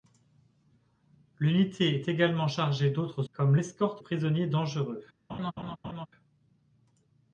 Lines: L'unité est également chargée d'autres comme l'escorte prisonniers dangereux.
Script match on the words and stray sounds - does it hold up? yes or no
no